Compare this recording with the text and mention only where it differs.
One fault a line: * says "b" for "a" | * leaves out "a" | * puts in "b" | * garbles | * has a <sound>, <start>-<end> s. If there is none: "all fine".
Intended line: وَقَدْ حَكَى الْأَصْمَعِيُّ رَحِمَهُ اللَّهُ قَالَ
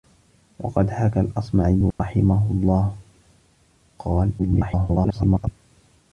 * has a dropout, 1.9-2.0 s
* garbles